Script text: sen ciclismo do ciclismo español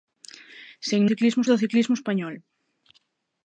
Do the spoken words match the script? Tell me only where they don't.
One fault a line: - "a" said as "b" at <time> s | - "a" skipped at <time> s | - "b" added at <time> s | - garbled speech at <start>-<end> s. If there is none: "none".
none